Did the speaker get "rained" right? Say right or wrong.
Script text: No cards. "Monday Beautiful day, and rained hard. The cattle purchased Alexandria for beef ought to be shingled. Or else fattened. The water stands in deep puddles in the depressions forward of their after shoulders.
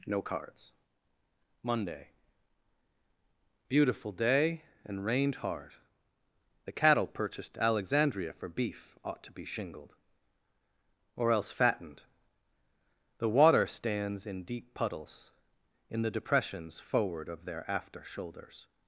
right